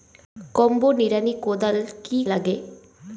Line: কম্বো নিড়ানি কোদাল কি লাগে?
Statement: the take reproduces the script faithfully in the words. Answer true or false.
true